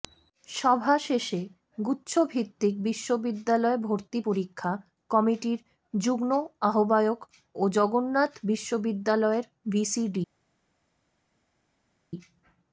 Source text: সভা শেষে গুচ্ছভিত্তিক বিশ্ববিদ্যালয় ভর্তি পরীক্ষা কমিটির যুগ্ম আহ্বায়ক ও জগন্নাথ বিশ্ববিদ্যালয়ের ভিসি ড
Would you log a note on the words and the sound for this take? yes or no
no